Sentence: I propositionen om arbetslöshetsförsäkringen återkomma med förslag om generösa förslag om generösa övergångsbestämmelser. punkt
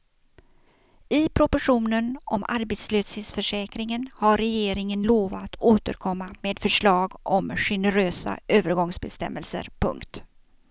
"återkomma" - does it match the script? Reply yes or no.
no